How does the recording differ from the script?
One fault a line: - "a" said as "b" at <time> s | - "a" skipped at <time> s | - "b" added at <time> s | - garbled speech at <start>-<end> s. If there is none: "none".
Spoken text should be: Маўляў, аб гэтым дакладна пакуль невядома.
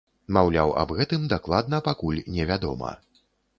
none